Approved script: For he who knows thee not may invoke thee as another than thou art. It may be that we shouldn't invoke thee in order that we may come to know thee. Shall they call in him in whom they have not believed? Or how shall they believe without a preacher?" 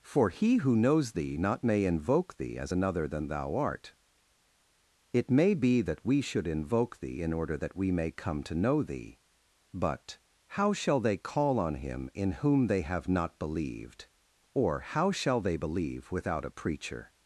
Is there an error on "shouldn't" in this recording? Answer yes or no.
yes